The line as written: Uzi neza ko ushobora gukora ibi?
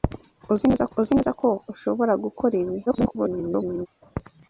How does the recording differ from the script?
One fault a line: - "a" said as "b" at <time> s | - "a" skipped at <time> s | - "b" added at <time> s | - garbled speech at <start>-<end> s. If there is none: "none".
- "uzi neza" added at 1.0 s
- garbled speech at 2.9-3.9 s